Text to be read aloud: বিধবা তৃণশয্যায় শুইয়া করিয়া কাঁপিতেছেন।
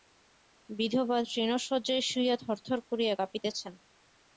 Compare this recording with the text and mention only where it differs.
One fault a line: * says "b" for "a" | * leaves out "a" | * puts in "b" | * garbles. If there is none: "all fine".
* puts in "থরথর"